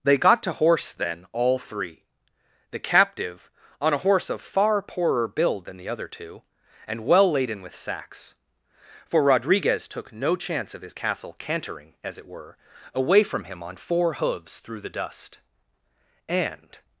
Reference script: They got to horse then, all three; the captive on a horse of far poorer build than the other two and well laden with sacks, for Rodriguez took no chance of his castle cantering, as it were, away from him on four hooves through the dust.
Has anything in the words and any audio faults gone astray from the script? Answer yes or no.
yes